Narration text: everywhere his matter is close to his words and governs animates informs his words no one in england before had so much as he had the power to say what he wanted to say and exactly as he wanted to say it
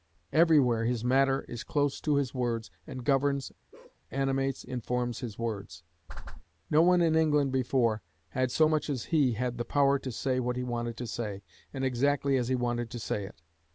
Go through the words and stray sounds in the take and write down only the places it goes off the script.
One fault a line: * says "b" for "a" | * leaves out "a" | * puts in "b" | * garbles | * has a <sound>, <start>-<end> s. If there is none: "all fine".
* has a bark, 3.7-4.0 s
* has a whoosh, 6.1-6.4 s